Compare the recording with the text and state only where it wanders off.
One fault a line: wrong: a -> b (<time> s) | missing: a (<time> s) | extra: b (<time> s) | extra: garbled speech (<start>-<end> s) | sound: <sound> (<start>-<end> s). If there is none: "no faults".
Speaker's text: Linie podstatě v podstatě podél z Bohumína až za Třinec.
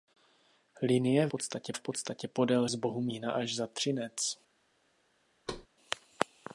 sound: thud (5.5-5.7 s)